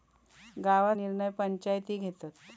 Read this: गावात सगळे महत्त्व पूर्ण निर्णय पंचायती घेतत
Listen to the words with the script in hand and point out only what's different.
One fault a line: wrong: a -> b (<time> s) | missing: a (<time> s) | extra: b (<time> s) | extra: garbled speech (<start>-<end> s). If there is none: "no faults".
missing: सगळे महत्त्व पूर्ण (0.9 s)